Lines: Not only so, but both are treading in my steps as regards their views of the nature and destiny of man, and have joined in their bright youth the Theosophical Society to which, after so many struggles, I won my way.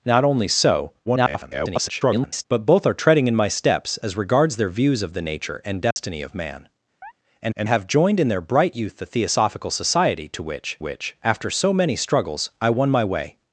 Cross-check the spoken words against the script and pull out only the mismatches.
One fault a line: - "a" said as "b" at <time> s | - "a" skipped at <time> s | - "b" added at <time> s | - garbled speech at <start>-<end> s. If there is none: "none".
- garbled speech at 1.1-2.5 s
- "and" added at 7.5 s
- "which" added at 10.8 s